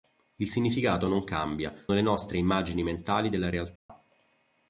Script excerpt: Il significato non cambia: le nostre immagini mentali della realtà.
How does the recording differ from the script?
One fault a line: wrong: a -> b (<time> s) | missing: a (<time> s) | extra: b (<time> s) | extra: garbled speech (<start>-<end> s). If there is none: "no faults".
no faults